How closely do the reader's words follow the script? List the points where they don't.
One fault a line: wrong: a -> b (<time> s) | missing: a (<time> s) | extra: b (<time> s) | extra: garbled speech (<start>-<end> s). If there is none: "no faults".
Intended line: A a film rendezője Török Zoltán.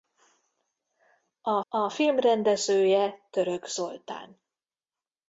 no faults